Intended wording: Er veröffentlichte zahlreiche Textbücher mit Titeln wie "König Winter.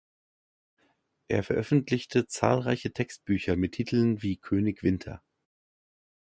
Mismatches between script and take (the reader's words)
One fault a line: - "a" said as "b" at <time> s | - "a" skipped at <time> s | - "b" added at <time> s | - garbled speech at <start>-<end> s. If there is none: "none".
none